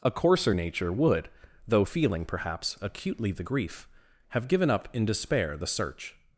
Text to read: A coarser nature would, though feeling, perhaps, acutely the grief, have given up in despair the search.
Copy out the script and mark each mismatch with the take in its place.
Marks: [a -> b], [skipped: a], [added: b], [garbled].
A coarser nature would, though feeling, perhaps, acutely the grief, have given up in despair the search.